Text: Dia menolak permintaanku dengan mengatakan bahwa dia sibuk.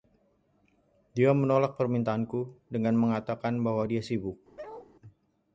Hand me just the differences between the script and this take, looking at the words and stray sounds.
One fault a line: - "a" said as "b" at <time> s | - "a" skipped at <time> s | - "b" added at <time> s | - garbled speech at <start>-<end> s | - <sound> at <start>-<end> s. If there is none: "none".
- bark at 4.6-4.9 s